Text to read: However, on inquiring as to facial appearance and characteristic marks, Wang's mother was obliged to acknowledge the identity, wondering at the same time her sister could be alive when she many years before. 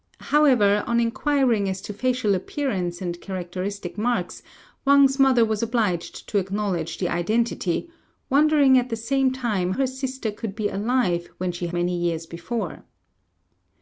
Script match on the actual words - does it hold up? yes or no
yes